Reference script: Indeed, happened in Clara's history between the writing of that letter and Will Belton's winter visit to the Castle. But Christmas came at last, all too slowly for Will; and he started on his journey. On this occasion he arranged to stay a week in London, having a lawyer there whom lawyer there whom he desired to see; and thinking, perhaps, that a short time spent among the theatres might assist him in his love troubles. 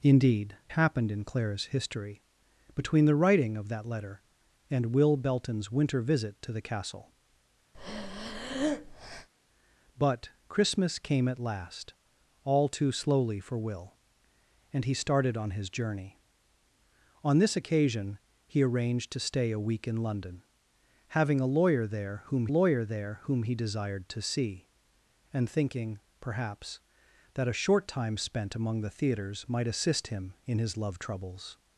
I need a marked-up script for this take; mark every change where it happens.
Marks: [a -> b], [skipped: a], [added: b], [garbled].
Indeed, happened in Clara's history between the writing of that letter and Will Belton's winter visit to the Castle. But Christmas came at last, all too slowly for Will; and he started on his journey. On this occasion he arranged to stay a week in London, having a lawyer there whom lawyer there whom he desired to see; and thinking, perhaps, that a short time spent among the theatres might assist him in his love troubles.